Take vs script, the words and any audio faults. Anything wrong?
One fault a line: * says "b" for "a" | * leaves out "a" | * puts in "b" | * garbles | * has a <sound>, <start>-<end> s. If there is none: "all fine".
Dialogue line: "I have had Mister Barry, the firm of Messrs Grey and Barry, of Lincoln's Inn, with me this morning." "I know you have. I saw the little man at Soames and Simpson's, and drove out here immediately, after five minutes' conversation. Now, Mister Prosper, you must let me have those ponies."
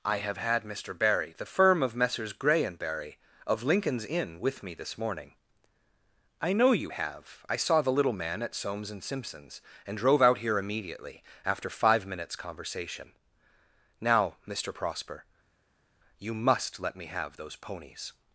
all fine